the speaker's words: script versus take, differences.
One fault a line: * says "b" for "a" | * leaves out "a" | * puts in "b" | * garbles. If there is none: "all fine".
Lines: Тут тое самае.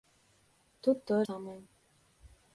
all fine